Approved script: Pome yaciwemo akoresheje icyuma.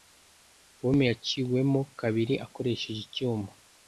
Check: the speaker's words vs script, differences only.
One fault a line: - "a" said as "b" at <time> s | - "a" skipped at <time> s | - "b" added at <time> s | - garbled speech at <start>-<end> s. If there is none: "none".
- "kabiri" added at 2.0 s